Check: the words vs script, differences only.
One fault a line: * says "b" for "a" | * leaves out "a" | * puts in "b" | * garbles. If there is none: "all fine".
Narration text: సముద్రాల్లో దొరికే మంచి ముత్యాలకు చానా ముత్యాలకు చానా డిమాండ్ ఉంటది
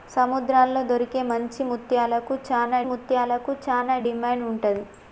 all fine